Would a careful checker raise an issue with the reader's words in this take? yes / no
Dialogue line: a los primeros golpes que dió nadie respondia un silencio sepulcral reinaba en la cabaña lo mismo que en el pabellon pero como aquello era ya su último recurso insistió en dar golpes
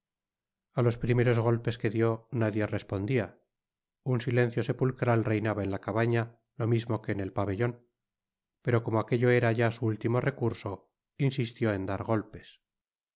no